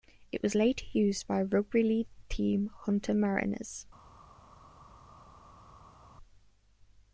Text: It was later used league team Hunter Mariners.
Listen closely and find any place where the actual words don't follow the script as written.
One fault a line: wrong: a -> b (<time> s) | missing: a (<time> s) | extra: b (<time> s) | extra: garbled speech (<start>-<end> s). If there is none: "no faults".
extra: by rugby (1.3 s)